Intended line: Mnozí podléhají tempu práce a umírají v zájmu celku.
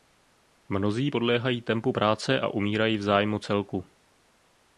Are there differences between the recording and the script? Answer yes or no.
no